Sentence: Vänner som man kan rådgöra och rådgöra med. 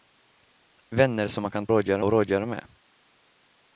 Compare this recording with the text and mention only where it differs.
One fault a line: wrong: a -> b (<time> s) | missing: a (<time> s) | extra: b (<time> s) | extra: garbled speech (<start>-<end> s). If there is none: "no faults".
no faults